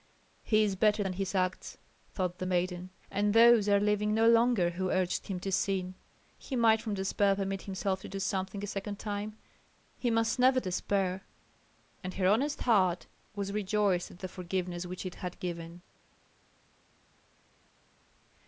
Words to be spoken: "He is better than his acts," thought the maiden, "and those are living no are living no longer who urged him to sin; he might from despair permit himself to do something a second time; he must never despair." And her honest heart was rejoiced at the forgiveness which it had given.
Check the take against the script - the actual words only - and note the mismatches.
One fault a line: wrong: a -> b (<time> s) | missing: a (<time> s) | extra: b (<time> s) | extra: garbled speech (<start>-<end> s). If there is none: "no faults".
missing: are living no (4.3 s)